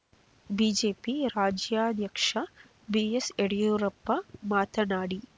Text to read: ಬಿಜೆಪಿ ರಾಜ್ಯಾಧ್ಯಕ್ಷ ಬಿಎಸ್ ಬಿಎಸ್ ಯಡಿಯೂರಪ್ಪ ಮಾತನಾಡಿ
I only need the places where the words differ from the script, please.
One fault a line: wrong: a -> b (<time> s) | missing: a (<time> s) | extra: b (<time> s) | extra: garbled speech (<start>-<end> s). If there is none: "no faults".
missing: ಬಿಎಸ್ (3.3 s)